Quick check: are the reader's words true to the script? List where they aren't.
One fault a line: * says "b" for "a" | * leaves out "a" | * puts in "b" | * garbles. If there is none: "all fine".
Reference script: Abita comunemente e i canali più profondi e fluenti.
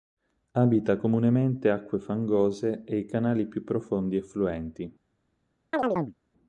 * puts in "acque fangose"